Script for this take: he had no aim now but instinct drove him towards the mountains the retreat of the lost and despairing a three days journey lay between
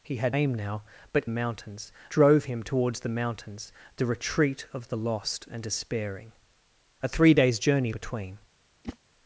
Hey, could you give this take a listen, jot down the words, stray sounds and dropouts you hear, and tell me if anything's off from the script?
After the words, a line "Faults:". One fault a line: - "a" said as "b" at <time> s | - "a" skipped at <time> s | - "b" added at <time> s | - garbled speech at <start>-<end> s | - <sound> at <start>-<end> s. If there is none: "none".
he had aim now but mountains drove him towards the mountains the retreat of the lost and despairing a three days journey between
Faults:
- "no" skipped at 0.3 s
- "instinct" said as "mountains" at 1.3 s
- "lay" skipped at 7.9 s
- whoosh at 8.8-9.0 s